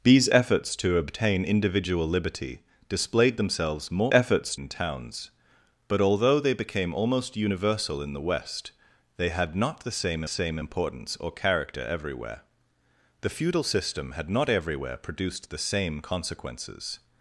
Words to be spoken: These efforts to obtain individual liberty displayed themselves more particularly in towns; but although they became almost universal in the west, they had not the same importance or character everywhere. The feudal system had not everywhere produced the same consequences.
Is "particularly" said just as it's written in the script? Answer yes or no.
no